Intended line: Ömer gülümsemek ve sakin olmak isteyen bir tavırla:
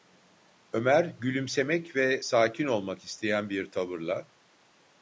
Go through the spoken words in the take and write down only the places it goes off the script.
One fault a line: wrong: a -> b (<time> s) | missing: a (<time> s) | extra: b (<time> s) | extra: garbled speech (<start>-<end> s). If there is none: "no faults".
no faults